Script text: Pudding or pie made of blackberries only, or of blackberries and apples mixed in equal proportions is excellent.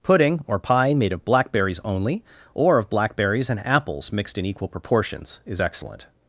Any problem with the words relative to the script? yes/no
no